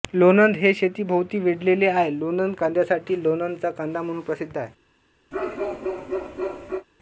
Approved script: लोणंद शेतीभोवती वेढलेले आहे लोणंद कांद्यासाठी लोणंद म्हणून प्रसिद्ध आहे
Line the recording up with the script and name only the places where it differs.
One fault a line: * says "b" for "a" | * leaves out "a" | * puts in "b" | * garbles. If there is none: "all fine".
* puts in "हे"
* puts in "चा कांदा"